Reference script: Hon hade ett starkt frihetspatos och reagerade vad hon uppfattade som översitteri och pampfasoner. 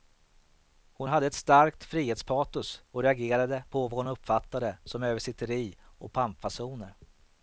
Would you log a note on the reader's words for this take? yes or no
yes